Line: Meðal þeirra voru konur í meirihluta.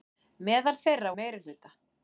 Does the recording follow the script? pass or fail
fail